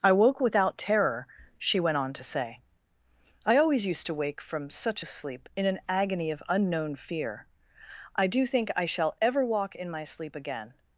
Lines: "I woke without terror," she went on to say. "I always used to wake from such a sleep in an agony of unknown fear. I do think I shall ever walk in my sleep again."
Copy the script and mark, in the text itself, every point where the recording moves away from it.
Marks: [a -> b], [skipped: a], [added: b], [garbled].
"I woke without terror," she went on to say. "I always used to wake from such a sleep in an agony of unknown fear. I do think I shall ever walk in my sleep again."